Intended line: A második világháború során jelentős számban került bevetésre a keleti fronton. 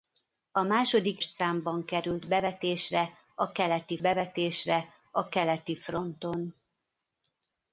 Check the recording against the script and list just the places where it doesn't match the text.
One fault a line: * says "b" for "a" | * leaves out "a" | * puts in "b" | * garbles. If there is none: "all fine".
* says "számban került bevetésre a keleti" for "világháború során jelentős számban került"